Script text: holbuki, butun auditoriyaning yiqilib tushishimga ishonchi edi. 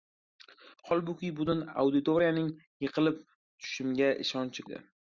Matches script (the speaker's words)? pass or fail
pass